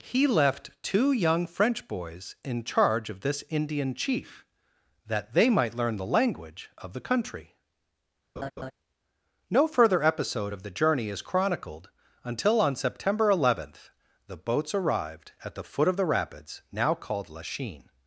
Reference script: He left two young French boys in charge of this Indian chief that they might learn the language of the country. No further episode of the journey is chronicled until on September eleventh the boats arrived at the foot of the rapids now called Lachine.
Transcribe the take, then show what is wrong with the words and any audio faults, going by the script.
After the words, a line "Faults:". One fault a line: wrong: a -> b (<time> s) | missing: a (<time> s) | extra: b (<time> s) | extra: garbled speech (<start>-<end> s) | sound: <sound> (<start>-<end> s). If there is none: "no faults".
He left two young French boys in charge of this Indian chief that they might learn the language of the country. No further episode of the journey is chronicled until on September eleventh the boats arrived at the foot of the rapids now called Lachine.
Faults:
sound: laugh (8.4-8.7 s)